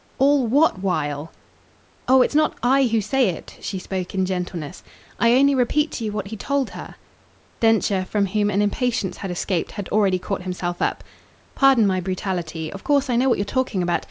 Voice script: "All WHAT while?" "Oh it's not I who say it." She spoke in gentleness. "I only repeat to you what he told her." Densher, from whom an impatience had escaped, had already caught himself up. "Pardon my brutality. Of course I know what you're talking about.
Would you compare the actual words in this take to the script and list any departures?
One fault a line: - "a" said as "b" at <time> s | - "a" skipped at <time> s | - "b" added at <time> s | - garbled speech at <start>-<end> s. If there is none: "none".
none